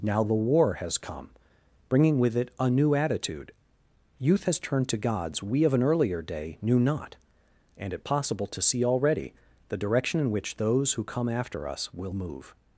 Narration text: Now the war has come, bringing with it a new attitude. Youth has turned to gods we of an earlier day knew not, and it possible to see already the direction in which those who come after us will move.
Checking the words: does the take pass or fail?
pass